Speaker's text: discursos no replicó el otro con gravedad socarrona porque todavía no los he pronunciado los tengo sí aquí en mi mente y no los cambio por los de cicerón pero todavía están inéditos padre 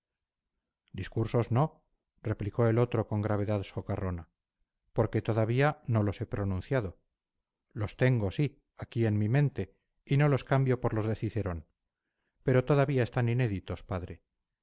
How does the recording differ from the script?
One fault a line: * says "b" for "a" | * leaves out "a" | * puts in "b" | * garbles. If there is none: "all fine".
all fine